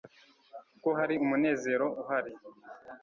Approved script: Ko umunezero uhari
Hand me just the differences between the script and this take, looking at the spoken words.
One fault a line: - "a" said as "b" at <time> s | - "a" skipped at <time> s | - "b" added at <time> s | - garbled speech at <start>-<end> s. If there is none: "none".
- "hari" added at 1.0 s